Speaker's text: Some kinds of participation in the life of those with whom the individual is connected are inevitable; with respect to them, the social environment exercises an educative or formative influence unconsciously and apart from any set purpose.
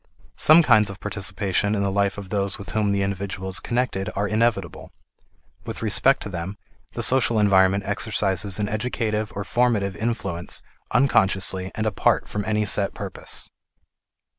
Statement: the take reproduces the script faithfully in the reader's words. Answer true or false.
true